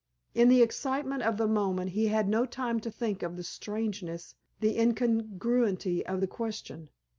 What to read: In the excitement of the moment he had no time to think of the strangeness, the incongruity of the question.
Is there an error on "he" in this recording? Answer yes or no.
no